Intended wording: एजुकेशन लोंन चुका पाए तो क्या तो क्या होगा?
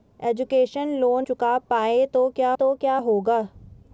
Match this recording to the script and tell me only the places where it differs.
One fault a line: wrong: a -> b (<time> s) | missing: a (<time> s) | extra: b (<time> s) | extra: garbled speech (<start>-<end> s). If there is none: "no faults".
no faults